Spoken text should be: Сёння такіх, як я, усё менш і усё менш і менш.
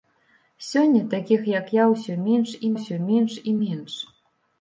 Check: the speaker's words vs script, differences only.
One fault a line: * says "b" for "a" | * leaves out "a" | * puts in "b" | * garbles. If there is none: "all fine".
all fine